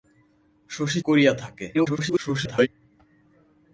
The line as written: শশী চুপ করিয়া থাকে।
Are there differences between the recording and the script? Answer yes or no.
yes